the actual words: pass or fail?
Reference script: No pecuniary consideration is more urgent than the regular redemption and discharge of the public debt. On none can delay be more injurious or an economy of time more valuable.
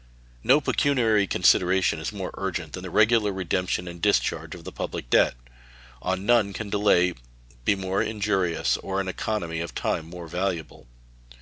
pass